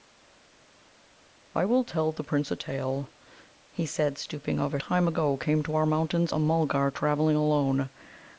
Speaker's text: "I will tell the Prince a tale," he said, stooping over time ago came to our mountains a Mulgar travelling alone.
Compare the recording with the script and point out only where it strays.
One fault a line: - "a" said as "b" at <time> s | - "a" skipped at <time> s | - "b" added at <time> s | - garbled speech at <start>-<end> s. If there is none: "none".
none